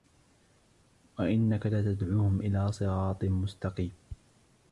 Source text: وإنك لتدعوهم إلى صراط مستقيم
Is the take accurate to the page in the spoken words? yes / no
yes